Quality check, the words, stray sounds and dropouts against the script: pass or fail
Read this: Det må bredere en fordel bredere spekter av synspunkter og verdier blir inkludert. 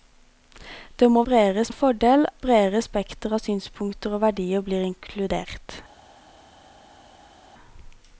pass